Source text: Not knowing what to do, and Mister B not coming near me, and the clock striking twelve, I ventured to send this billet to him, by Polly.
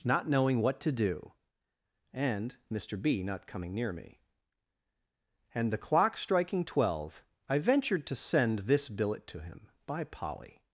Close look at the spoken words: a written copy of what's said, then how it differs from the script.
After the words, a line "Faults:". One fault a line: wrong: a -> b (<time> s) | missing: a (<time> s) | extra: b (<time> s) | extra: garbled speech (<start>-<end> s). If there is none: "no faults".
Not knowing what to do, and Mister B not coming near me, and the clock striking twelve, I ventured to send this billet to him, by Polly.
Faults:
no faults